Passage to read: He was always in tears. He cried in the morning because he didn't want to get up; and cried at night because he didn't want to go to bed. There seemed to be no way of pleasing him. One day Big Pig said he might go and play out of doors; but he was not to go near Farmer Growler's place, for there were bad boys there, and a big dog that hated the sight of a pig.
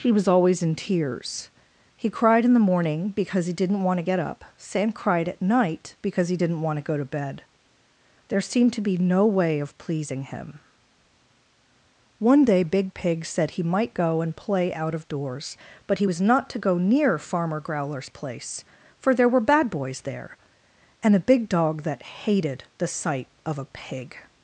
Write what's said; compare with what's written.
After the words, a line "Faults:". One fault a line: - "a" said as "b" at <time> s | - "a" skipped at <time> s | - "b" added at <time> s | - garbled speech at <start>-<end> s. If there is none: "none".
He was always in tears. He cried in the morning because he didn't want to get up; sam cried at night because he didn't want to go to bed. There seemed to be no way of pleasing him. One day Big Pig said he might go and play out of doors; but he was not to go near Farmer Growler's place, for there were bad boys there, and a big dog that hated the sight of a pig.
Faults:
- "and" said as "sam" at 4.6 s